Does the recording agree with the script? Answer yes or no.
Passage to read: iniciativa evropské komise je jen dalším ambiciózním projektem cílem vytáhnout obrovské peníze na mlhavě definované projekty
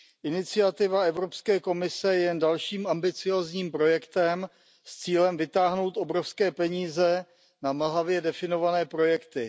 no